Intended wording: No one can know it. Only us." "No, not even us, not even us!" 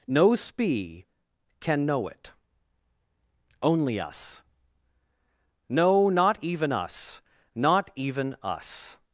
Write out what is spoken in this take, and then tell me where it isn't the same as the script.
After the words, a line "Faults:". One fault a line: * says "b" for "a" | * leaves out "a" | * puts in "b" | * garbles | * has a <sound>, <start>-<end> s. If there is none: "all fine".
No spee can know it. Only us." "No, not even us, not even us!"
Faults:
* says "spee" for "one"